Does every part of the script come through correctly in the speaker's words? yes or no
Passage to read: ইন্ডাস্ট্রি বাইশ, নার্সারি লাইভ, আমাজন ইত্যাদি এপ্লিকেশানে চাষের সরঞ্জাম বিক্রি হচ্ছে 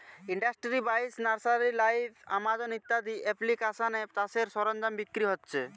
yes